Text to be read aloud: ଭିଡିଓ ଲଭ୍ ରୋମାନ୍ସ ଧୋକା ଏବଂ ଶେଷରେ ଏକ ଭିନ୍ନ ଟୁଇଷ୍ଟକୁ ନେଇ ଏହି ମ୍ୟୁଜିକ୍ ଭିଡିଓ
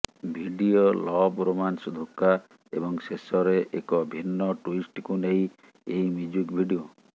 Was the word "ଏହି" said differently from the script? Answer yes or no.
no